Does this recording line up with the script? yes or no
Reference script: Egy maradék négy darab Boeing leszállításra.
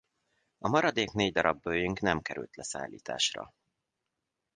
no